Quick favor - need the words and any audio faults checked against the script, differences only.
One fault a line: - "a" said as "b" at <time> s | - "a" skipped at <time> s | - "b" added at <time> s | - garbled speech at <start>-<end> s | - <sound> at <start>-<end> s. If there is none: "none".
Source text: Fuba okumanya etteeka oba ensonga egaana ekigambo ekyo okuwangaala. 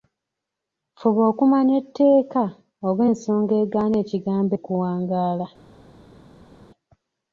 - "ekyo" skipped at 4.5 s